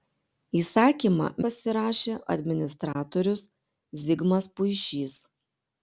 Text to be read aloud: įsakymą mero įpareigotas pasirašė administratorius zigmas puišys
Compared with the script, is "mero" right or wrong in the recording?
wrong